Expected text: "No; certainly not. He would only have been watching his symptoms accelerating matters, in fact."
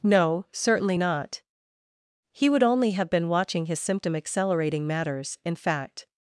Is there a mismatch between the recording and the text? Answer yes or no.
yes